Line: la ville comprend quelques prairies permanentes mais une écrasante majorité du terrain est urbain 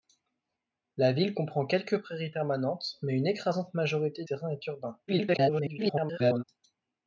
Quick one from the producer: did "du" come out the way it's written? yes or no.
no